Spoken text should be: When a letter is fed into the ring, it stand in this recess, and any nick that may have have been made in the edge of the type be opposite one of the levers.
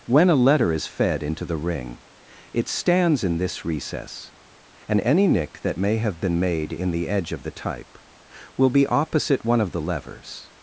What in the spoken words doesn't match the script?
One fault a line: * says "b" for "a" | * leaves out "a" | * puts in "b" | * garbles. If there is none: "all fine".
* says "stands" for "stand"
* leaves out "have"
* puts in "will"